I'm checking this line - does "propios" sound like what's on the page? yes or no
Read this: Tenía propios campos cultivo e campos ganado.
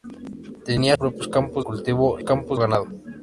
yes